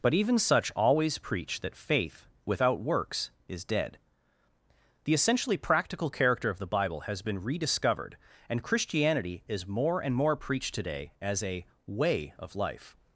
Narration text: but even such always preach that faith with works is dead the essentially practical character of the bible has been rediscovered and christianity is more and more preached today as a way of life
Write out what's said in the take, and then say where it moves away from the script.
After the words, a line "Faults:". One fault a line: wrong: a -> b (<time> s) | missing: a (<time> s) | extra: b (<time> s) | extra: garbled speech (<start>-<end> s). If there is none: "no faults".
but even such always preach that faith without works is dead the essentially practical character of the bible has been rediscovered and christianity is more and more preached today as a way of life
Faults:
wrong: with -> without (2.5 s)